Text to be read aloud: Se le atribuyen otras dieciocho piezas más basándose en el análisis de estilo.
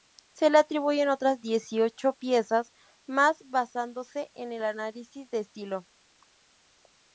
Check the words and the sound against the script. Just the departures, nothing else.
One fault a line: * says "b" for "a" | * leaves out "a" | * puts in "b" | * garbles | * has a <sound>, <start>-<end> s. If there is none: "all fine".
all fine